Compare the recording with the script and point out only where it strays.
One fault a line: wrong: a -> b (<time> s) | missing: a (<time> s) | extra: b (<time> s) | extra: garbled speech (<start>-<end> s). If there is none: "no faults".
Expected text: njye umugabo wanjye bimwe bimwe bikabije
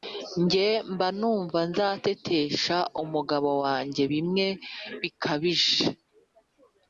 extra: mba numva nzatetesha (0.9 s)
missing: bimwe (4.5 s)